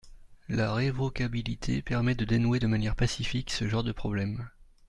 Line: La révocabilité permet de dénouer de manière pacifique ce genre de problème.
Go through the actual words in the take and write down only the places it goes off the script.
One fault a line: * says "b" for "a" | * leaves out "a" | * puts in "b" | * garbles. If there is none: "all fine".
all fine